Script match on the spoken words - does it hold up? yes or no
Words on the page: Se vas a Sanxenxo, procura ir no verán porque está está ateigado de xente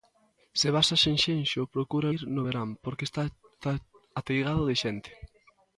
yes